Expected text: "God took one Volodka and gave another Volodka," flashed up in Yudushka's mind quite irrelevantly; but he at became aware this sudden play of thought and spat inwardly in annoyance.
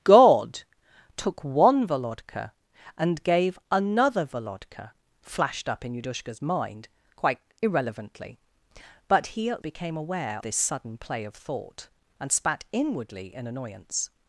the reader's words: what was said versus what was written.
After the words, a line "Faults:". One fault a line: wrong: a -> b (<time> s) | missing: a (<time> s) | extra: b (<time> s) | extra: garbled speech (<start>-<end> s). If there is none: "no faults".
"God took one Volodka and gave another Volodka," flashed up in Yudushka's mind quite irrelevantly; but he at became aware this sudden play of thought and spat inwardly in annoyance.
Faults:
no faults